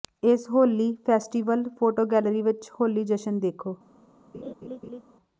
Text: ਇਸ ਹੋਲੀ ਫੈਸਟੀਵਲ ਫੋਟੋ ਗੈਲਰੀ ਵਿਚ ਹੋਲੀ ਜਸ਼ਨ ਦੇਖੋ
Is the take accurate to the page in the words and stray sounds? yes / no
no